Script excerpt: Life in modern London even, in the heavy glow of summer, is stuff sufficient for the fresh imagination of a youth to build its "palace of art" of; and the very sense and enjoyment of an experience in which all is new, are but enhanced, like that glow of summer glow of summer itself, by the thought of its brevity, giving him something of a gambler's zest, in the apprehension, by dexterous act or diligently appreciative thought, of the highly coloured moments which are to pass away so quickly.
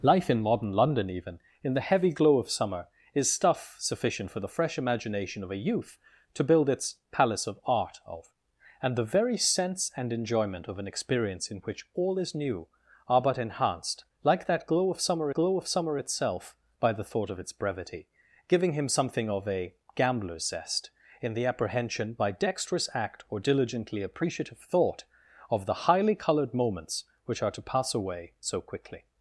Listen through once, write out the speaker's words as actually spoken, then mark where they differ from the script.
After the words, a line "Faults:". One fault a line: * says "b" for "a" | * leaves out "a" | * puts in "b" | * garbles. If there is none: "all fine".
Life in modern London even, in the heavy glow of summer, is stuff sufficient for the fresh imagination of a youth to build its "palace of art" of; and the very sense and enjoyment of an experience in which all is new, are but enhanced, like that glow of summer glow of summer itself, by the thought of its brevity, giving him something of a gambler's zest, in the apprehension, by dexterous act or diligently appreciative thought, of the highly coloured moments which are to pass away so quickly.
Faults:
all fine